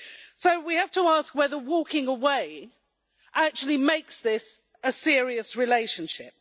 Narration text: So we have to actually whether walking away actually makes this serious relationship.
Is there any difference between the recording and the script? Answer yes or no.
yes